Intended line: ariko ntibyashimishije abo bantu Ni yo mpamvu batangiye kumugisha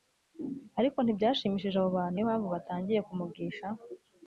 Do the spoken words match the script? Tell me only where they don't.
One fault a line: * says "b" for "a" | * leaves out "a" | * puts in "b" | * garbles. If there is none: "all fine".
* leaves out "Ni"